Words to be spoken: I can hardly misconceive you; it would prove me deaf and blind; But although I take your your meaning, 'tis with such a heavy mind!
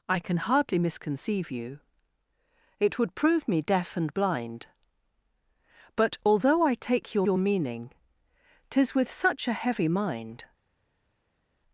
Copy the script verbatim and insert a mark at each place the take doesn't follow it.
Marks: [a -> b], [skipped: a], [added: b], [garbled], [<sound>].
I can hardly misconceive you; it would prove me deaf and blind; But although I take your your meaning, 'tis with such a heavy mind!